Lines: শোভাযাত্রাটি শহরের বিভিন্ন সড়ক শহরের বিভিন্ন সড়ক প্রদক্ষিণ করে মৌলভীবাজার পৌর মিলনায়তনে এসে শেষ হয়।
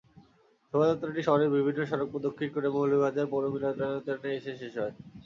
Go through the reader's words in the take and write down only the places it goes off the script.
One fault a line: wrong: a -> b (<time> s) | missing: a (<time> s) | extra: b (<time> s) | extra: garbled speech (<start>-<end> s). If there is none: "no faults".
missing: শহরের বিভিন্ন সড়ক (2.1 s)